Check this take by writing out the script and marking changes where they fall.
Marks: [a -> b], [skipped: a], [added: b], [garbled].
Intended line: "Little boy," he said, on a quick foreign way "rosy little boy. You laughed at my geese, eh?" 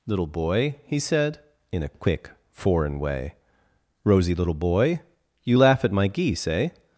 "Little boy," he said, [on -> in] a quick foreign way "rosy little boy. You [laughed -> laugh] at my geese, eh?"